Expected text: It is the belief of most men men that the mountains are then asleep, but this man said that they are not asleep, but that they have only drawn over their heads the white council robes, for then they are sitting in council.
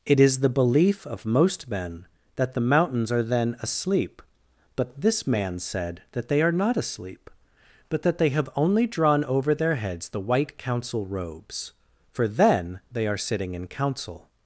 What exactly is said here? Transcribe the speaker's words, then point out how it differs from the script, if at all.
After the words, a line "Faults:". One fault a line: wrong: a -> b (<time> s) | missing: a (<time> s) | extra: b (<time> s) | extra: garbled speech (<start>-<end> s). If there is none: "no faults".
It is the belief of most men that the mountains are then asleep, but this man said that they are not asleep, but that they have only drawn over their heads the white council robes, for then they are sitting in council.
Faults:
missing: men (2.1 s)